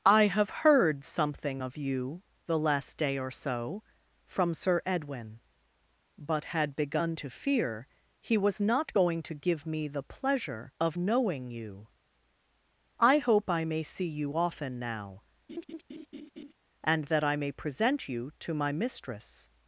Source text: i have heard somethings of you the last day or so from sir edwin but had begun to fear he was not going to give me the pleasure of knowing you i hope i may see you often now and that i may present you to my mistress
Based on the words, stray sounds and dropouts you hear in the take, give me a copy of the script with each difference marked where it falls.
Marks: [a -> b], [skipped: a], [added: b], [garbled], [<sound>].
i have heard [somethings -> something] of you the last day or so from sir edwin but had begun to fear he was not going to give me the pleasure of knowing you i hope i may see you often now [laugh] and that i may present you to my mistress